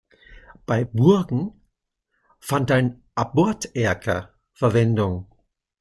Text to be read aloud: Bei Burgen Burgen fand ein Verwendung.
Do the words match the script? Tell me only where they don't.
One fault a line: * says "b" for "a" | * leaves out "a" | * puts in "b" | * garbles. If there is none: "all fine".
* leaves out "Burgen"
* puts in "Aborterker"